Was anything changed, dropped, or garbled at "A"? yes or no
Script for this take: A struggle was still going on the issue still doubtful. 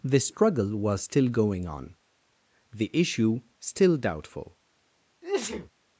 yes